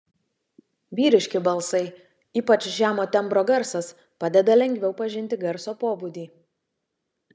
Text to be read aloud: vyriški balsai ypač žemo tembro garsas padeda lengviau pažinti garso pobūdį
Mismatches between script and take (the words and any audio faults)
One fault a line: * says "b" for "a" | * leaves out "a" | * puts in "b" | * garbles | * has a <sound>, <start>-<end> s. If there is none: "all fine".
all fine